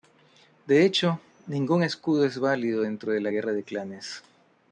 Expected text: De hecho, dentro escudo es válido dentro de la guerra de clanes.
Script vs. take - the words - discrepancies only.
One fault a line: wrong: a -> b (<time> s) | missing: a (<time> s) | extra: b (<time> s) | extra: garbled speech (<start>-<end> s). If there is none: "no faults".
wrong: dentro -> ningún (1.4 s)